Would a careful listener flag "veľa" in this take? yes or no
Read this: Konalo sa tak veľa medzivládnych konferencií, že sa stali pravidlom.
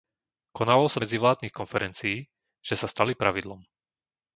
yes